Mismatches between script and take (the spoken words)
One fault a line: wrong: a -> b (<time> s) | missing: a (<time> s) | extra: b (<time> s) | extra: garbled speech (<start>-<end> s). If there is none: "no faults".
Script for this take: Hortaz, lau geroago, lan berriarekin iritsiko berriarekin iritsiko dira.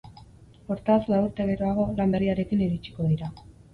extra: urte (1.3 s)
missing: berriarekin iritsiko (3.1 s)